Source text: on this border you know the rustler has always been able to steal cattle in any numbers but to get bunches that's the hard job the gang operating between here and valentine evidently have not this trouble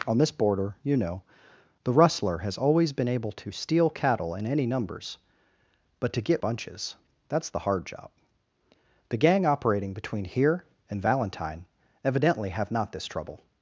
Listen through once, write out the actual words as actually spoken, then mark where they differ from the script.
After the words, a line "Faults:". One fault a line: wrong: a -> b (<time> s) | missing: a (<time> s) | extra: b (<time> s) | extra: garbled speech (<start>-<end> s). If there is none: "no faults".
on this border you know the rustler has always been able to steal cattle in any numbers but to get bunches that's the hard job the gang operating between here and valentine evidently have not this trouble
Faults:
no faults